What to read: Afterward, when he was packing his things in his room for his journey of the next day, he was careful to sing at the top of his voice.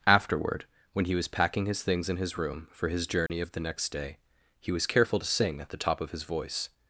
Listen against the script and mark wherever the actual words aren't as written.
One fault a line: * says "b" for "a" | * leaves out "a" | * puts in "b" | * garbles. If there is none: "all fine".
all fine